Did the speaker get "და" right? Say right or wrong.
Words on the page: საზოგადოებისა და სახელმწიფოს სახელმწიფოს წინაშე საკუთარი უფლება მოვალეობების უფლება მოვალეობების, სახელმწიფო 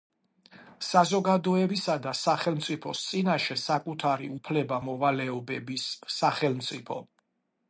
right